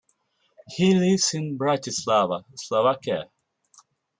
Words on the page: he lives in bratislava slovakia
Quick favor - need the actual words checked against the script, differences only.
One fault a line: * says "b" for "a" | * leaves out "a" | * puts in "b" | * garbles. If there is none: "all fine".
all fine